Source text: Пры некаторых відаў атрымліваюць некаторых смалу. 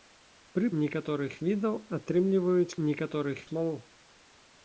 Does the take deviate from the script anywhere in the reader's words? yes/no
no